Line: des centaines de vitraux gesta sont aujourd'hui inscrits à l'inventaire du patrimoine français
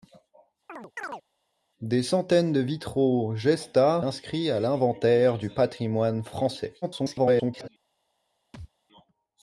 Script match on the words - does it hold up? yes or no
no